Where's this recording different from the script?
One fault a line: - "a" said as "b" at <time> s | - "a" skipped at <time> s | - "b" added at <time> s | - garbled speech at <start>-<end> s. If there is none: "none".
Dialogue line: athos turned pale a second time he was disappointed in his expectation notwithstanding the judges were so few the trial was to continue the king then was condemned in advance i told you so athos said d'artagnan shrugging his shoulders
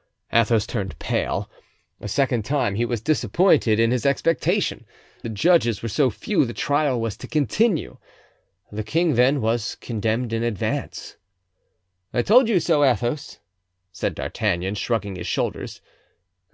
- "notwithstanding" skipped at 4.8 s